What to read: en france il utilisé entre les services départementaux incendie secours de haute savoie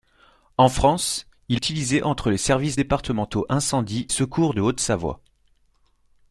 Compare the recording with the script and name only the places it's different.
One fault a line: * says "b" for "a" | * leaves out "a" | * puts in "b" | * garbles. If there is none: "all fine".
all fine